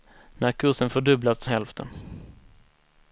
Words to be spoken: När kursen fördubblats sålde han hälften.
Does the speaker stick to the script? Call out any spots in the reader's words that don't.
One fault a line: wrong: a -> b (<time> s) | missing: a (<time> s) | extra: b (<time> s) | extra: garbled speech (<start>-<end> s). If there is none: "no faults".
missing: sålde han (1.4 s)